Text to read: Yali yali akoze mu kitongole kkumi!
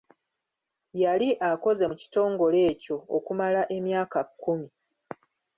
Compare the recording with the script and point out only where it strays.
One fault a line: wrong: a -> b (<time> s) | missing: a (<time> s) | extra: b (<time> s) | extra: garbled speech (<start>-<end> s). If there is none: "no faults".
missing: yali (1.3 s)
extra: ekyo okumala emyaka (2.7 s)